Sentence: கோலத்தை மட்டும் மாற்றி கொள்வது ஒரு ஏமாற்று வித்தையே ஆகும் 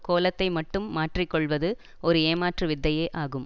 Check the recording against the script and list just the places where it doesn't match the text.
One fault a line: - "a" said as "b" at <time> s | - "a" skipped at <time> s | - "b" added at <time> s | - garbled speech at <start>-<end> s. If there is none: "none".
none